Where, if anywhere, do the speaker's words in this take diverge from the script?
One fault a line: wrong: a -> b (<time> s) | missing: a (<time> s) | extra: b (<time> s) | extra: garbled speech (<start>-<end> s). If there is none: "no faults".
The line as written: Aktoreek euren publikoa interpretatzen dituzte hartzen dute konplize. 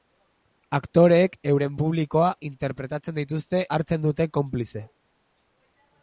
no faults